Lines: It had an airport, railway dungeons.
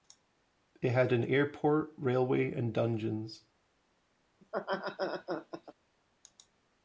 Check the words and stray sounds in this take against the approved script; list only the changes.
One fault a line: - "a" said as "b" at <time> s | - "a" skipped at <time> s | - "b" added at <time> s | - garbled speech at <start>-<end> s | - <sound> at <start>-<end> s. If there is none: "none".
- "and" added at 2.5 s
- laugh at 4.4-5.7 s